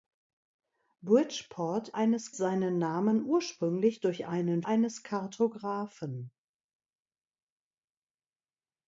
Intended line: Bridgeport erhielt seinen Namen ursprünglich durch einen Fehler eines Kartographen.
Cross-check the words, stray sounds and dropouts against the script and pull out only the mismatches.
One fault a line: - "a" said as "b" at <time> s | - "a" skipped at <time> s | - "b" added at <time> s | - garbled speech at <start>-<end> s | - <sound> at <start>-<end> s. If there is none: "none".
- "erhielt" said as "eines" at 1.9 s
- "Fehler" skipped at 4.6 s